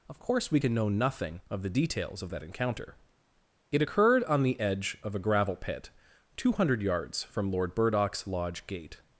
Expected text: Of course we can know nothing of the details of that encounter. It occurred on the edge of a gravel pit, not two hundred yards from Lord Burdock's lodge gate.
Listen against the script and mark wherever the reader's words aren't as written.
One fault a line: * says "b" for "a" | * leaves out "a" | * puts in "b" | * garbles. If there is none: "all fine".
* leaves out "not"